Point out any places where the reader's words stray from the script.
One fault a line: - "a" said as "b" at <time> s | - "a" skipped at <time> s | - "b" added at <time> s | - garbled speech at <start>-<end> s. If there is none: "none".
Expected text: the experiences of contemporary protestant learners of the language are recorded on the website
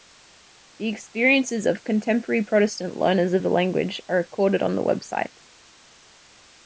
none